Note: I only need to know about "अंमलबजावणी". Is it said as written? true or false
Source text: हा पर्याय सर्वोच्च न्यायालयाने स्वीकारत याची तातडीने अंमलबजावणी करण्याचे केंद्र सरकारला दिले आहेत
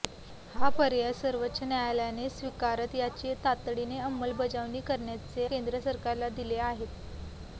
true